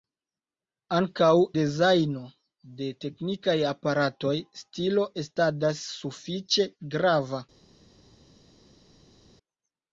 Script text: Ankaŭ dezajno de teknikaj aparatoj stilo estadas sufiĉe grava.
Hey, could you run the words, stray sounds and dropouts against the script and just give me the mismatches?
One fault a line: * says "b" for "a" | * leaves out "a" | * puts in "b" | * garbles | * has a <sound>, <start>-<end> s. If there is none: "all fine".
all fine